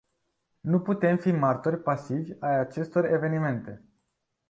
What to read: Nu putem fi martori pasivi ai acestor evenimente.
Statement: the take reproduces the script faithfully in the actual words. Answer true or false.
true